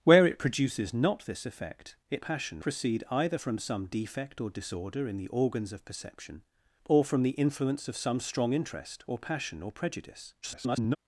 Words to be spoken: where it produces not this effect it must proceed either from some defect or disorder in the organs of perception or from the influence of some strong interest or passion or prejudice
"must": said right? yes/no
no